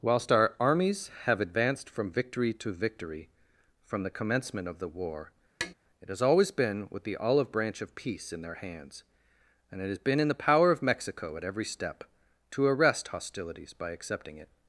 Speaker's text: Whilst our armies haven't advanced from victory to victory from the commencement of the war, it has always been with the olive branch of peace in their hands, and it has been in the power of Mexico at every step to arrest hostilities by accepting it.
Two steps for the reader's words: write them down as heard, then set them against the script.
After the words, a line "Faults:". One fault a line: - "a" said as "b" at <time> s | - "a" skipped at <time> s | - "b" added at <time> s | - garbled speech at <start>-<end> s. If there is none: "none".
Whilst our armies have advanced from victory to victory from the commencement of the war, it has always been with the olive branch of peace in their hands, and it has been in the power of Mexico at every step to arrest hostilities by accepting it.
Faults:
- "haven't" said as "have" at 1.2 s